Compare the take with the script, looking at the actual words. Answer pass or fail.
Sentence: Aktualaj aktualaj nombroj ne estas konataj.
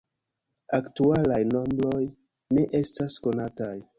fail